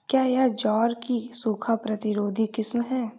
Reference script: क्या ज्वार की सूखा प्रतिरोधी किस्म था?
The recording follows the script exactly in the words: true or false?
false